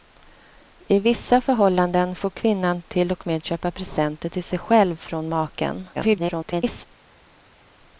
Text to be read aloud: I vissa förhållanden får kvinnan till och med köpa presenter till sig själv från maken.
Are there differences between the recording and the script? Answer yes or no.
yes